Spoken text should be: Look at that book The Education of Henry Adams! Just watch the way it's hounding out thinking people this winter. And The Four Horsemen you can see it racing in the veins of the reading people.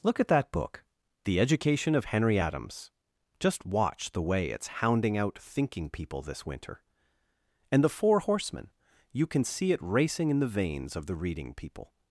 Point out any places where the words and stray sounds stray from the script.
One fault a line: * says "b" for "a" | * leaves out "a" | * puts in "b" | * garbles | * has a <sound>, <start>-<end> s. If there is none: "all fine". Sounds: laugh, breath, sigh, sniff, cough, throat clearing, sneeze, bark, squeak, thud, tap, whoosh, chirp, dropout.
all fine